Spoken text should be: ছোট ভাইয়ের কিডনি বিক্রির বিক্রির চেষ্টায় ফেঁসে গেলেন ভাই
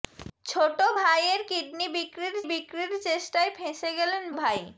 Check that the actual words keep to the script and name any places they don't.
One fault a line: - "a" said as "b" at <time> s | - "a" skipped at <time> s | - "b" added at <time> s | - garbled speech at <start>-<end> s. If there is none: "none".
none